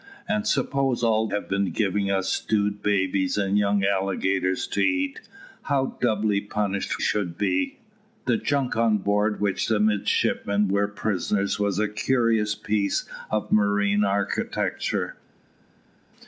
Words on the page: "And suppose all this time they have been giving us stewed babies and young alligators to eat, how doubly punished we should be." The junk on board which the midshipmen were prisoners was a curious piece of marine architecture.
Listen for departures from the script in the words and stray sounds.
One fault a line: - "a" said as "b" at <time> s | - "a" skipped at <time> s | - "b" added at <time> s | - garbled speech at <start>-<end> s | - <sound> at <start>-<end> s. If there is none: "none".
- "this time they" skipped at 1.3 s
- "we" skipped at 7.0 s